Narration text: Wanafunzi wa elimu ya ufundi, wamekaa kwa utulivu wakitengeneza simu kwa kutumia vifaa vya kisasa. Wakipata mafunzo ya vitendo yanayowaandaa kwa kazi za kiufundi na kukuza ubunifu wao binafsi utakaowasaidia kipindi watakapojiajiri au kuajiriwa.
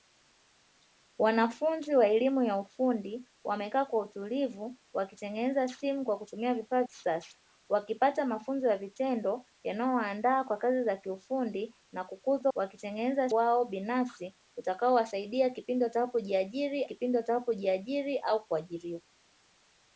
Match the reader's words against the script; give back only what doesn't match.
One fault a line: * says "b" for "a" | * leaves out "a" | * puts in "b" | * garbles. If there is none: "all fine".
* leaves out "vya"
* says "wakitengeneza" for "ubunifu"
* puts in "kipindi watakapojiajiri"